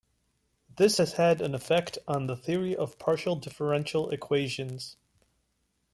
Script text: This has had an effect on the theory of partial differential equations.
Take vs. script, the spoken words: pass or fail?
pass